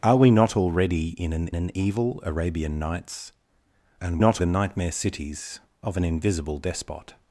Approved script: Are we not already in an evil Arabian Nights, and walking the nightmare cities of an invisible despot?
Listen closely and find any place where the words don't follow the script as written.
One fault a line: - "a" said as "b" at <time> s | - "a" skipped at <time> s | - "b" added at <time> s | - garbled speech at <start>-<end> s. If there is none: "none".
- "an" added at 1.5 s
- "walking" said as "not" at 4.2 s